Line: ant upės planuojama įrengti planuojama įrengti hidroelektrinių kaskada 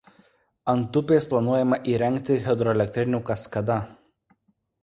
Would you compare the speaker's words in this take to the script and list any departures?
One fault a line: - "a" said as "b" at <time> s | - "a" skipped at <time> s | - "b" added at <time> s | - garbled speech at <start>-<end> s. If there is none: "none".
- "planuojama įrengti" skipped at 2.4 s